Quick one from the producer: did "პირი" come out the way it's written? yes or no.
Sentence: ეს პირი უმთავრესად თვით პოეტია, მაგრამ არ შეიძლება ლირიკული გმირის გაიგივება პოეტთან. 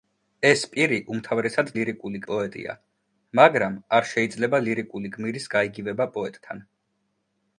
yes